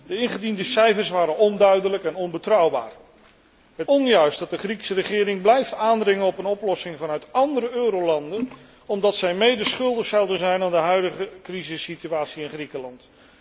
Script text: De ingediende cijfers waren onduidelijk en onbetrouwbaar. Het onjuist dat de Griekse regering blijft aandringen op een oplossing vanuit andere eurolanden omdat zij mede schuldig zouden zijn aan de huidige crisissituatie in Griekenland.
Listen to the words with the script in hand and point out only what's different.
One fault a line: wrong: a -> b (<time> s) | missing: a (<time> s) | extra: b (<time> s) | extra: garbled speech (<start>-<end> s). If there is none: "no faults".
no faults